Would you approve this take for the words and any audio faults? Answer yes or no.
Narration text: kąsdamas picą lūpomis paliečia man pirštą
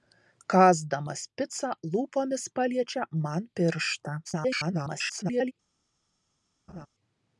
no